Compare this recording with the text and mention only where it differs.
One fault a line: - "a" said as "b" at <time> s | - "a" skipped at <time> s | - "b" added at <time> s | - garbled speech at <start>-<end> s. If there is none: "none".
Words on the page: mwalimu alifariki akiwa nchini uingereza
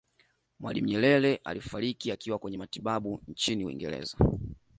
- "nyerere" added at 0.8 s
- "kwenye matibabu" added at 2.4 s